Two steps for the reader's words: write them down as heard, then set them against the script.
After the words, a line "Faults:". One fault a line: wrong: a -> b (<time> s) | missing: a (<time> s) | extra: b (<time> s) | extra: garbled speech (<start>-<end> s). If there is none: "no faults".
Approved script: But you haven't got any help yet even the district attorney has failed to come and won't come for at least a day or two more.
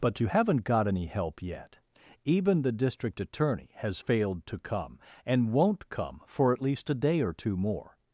But you haven't got any help yet even the district attorney has failed to come and won't come for at least a day or two more.
Faults:
no faults